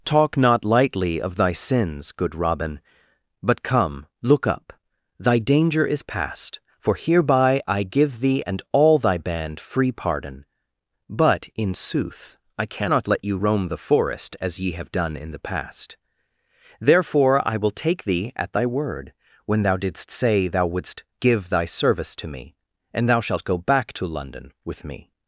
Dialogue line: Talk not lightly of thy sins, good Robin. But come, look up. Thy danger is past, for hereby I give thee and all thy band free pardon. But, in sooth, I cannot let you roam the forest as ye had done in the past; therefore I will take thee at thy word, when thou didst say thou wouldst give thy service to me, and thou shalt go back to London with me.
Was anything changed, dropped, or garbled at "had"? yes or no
yes